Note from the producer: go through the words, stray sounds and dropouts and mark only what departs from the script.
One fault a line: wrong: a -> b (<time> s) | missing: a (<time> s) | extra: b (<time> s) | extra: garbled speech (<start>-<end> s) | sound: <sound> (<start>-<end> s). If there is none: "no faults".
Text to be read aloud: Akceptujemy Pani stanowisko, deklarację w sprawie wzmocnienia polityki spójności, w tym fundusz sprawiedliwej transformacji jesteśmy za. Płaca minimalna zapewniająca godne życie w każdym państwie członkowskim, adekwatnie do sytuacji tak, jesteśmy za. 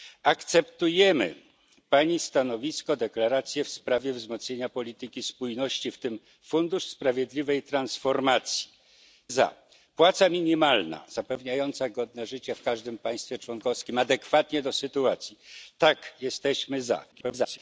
missing: jesteśmy (8.7 s)
extra: garbled speech (17.1-17.6 s)